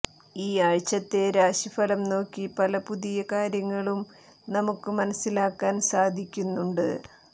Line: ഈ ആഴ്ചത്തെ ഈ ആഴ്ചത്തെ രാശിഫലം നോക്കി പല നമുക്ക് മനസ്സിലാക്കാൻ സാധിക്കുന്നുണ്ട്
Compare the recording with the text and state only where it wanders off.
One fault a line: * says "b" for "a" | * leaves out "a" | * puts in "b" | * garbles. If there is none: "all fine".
* leaves out "ഈ ആഴ്ചത്തെ"
* puts in "പുതിയ കാര്യങ്ങളും"